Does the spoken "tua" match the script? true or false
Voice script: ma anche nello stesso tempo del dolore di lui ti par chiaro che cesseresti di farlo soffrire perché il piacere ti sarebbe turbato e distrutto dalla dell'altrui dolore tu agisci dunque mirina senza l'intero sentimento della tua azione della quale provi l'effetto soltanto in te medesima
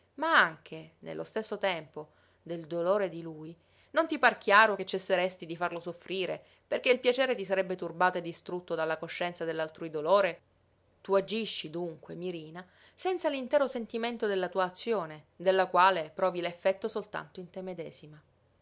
true